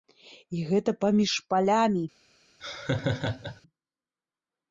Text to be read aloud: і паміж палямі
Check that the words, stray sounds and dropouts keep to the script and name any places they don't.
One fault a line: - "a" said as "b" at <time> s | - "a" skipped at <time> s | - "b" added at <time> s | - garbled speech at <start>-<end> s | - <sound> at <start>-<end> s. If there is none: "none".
- "гэта" added at 0.7 s
- laugh at 2.6-3.6 s